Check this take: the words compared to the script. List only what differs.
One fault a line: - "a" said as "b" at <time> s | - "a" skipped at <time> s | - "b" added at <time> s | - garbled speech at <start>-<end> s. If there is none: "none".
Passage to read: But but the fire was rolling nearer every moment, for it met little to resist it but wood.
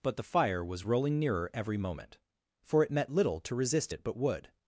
- "but" skipped at 0.2 s